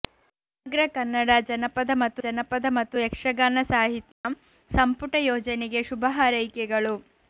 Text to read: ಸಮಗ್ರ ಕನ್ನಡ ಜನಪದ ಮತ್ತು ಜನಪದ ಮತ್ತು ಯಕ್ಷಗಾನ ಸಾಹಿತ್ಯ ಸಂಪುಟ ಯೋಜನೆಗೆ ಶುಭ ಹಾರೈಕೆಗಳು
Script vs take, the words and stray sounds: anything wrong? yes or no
yes